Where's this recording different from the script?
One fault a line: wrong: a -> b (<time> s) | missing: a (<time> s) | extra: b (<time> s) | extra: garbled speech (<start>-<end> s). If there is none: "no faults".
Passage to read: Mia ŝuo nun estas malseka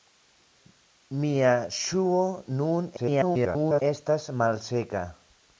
extra: garbled speech (3.0-3.8 s)